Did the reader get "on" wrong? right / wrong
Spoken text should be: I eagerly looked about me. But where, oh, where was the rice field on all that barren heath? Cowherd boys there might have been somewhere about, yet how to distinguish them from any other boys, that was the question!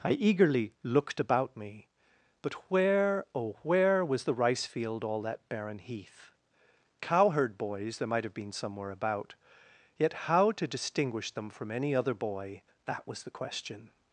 wrong